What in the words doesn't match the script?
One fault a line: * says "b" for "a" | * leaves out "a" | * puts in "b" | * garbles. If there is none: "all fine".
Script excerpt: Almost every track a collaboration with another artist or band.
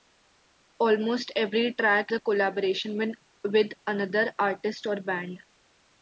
all fine